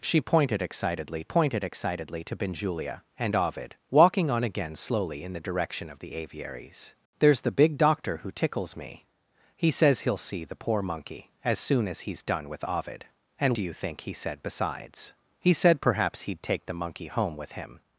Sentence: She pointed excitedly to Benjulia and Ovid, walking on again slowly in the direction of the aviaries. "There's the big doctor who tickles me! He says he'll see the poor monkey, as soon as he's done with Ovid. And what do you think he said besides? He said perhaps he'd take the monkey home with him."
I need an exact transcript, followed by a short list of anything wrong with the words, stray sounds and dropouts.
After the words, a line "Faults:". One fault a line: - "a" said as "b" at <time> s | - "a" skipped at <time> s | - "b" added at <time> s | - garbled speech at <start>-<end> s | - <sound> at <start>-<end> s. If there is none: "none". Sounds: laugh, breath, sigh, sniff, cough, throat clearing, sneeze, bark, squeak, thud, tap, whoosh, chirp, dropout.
She pointed excitedly pointed excitedly to Benjulia and Ovid, walking on again slowly in the direction of the aviaries. "There's the big doctor who tickles me! He says he'll see the poor monkey, as soon as he's done with Ovid. And do you think he said besides? He said perhaps he'd take the monkey home with him."
Faults:
- "pointed excitedly" added at 1.2 s
- "what" skipped at 13.6 s